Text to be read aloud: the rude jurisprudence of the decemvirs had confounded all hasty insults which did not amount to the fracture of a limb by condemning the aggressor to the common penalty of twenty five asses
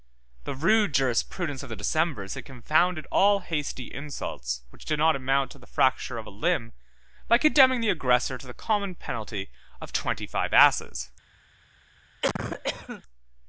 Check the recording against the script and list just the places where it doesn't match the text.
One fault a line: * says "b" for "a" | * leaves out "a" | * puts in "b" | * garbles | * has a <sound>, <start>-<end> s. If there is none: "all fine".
* has a cough, 12.2-13.0 s